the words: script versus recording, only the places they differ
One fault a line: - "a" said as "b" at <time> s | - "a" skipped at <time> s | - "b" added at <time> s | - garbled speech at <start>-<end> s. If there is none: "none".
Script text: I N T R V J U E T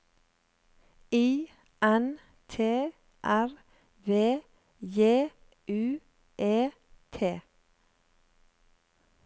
none